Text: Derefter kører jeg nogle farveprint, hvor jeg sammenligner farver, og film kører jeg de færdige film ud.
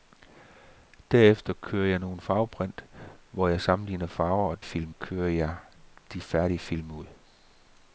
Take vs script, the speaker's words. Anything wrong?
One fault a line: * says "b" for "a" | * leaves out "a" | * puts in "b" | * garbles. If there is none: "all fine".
all fine